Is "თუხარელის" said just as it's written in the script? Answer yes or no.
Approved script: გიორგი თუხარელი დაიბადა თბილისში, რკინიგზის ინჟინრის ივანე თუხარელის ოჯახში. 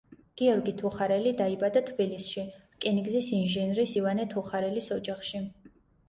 yes